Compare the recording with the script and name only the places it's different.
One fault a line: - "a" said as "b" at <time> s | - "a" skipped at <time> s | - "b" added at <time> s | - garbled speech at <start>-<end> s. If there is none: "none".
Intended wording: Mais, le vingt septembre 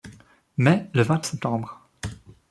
none